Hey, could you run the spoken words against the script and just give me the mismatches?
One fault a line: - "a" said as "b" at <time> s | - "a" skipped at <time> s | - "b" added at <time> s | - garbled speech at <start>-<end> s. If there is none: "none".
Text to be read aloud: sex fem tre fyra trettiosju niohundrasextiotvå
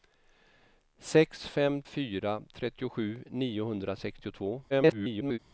- "tre" skipped at 1.8 s
- garbled speech at 4.7-5.4 s